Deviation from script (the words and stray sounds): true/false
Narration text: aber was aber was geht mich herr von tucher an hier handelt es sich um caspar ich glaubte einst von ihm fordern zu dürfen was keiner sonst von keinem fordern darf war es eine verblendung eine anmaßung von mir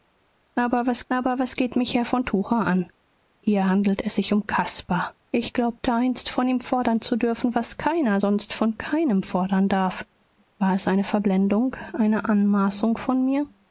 false